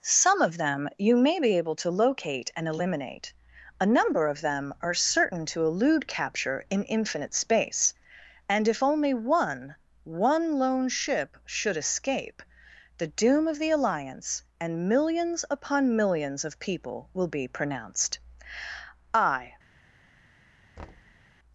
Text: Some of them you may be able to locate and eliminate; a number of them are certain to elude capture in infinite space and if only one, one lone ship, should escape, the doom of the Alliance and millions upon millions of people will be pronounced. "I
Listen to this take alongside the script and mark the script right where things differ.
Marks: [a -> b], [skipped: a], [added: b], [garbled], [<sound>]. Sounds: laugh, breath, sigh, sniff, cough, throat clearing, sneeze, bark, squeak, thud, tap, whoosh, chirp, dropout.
Some of them you may be able to locate and eliminate; a number of them are certain to elude capture in infinite space and if only one, one lone ship, should escape, the doom of the Alliance and millions upon millions of people will be pronounced. "I [thud]